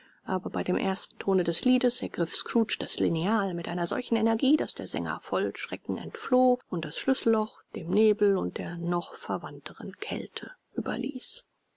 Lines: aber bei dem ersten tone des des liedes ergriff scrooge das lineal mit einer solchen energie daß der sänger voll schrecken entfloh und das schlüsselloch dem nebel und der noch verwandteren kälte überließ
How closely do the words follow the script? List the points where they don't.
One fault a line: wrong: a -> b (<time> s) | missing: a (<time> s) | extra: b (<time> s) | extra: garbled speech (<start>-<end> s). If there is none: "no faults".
missing: des (1.6 s)